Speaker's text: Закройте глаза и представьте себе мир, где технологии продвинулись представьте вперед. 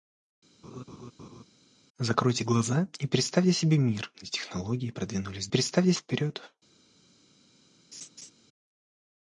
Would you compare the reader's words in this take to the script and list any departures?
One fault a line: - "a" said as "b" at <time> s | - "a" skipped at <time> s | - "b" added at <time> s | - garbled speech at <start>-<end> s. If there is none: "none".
none